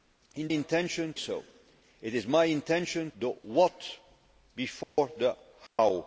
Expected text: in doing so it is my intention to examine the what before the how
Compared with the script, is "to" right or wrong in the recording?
wrong